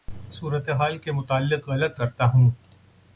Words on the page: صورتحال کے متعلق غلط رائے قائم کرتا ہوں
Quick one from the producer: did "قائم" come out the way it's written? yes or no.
no